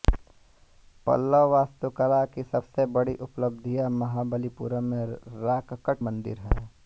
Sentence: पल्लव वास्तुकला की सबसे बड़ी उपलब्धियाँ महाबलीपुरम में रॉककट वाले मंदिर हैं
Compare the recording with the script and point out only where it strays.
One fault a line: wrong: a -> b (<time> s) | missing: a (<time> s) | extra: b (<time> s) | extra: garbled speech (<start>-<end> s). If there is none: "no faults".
missing: वाले (6.0 s)